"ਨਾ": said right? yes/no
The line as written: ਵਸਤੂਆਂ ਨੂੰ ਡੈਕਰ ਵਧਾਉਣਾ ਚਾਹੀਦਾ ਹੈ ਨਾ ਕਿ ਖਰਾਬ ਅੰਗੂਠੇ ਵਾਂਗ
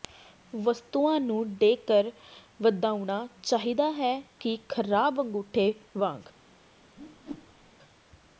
no